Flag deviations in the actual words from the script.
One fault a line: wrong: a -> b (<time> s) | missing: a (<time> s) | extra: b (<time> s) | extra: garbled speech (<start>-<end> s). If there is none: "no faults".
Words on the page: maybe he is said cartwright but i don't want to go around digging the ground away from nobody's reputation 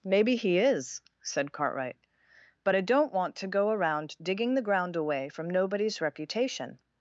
no faults